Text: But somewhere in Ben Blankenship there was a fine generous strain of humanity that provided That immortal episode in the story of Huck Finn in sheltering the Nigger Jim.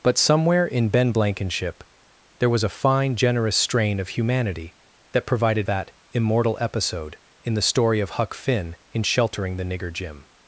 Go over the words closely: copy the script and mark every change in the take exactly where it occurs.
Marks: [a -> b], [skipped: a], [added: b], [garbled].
But somewhere in Ben Blankenship there was a fine generous strain of humanity that provided That immortal episode in the story of Huck Finn in sheltering the Nigger Jim.